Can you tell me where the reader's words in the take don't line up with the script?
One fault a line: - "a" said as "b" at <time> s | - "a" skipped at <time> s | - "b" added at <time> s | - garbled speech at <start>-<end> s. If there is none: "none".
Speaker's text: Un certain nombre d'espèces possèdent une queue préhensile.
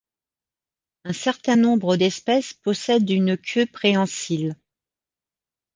none